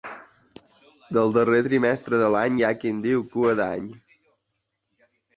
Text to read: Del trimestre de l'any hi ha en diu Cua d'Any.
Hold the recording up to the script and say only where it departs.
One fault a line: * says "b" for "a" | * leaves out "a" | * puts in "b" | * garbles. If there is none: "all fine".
* puts in "darrer"
* puts in "qui"